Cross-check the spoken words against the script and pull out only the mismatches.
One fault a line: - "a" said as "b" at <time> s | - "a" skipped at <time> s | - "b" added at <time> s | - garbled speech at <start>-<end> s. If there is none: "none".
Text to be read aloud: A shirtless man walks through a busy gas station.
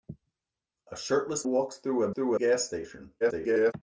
- "man" skipped at 1.5 s
- "busy" said as "through" at 2.1 s
- garbled speech at 3.2-3.7 s